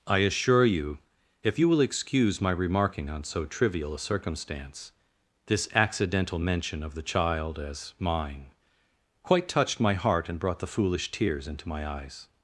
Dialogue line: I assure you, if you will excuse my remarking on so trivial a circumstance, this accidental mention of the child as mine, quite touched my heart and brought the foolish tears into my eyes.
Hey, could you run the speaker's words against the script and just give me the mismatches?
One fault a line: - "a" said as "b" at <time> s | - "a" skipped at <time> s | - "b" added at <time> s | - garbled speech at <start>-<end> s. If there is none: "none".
none